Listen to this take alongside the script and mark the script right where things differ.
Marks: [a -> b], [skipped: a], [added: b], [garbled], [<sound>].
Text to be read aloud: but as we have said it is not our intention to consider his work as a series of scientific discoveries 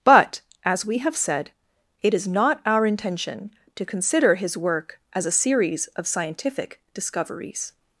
but as we have said it is not our intention to consider his work as a series of scientific discoveries